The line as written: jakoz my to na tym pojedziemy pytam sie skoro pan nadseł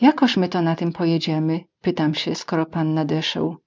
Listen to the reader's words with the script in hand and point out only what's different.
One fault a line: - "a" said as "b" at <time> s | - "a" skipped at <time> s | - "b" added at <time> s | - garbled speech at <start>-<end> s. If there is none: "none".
none